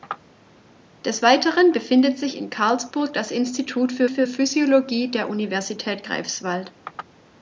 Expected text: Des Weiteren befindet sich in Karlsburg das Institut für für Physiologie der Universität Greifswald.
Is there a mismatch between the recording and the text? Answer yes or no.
no